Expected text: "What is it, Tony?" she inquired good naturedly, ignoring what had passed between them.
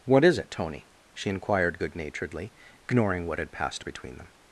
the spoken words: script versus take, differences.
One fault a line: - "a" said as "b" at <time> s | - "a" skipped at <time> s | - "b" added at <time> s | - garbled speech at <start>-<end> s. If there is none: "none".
none